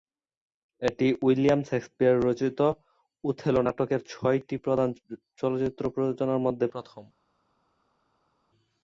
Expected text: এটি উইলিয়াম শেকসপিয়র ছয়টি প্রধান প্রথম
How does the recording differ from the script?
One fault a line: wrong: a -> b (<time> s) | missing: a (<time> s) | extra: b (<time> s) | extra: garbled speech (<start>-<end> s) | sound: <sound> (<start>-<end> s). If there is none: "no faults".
extra: রচিত ওথেলো নাটকের (2.2 s)
extra: চলচ্চিত্র প্রযোজনার মধ্যে (5.4 s)